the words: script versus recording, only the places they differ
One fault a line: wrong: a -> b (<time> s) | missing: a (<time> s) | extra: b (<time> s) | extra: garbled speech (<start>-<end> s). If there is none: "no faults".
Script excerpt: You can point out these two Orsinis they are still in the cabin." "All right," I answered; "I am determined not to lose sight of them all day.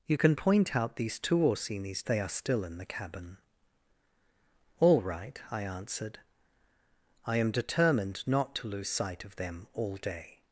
no faults